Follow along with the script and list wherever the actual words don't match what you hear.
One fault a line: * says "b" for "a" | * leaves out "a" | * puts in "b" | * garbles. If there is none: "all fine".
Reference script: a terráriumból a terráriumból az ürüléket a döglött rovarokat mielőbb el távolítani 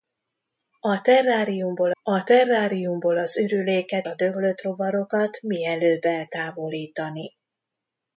all fine